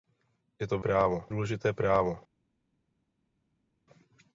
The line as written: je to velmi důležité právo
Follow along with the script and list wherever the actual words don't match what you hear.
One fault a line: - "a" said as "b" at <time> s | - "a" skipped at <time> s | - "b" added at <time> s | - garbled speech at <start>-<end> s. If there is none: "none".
- "velmi" said as "právo" at 0.8 s